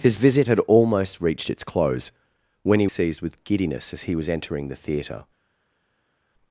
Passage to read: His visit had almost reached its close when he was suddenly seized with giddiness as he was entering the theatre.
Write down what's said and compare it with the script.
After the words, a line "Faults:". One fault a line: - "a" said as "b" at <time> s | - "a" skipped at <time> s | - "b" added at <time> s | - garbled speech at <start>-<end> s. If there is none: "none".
His visit had almost reached its close when he seized with giddiness as he was entering the theatre.
Faults:
- "was suddenly" skipped at 2.9 s